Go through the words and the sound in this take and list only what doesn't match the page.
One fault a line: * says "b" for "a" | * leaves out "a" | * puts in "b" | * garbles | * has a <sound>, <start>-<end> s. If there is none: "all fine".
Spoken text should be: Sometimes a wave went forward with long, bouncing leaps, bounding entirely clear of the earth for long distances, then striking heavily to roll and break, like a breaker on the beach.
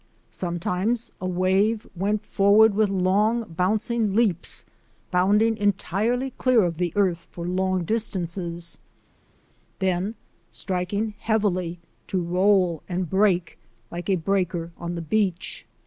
all fine